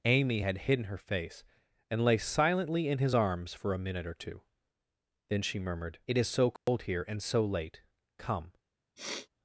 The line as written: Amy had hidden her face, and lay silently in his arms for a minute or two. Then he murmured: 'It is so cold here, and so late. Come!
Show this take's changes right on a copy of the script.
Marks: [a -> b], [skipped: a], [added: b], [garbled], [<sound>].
Amy had hidden her face, and lay silently in his arms for a minute or two. Then [he -> she] murmured: 'It is so cold [dropout] here, and so late. Come! [sniff]